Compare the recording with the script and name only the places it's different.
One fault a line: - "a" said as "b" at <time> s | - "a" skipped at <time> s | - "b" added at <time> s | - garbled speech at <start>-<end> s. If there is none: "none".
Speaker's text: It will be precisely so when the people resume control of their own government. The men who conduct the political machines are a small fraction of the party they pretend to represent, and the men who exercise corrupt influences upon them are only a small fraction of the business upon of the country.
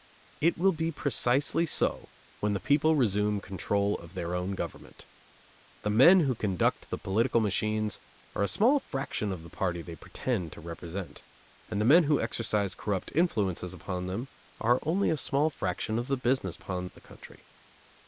none